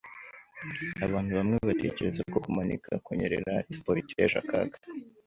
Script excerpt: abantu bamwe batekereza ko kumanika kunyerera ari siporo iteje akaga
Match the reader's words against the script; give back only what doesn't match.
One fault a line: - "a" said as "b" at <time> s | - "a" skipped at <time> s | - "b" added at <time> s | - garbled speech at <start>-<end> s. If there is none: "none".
none